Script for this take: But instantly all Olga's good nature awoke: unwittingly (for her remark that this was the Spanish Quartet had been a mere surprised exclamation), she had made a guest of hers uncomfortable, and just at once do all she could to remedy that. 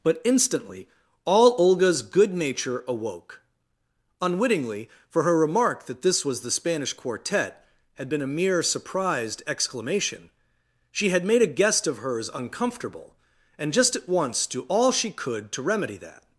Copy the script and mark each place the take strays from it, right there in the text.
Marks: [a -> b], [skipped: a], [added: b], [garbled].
But instantly all Olga's good nature awoke: unwittingly (for her remark that this was the Spanish Quartet had been a mere surprised exclamation), she had made a guest of hers uncomfortable, and just at once do all she could to remedy that.